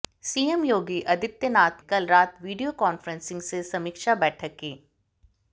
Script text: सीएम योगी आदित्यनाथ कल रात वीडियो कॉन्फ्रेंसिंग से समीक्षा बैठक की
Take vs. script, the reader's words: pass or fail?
pass